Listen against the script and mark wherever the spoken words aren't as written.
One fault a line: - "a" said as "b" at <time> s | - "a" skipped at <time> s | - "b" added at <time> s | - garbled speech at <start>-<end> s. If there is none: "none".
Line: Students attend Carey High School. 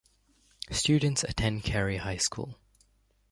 none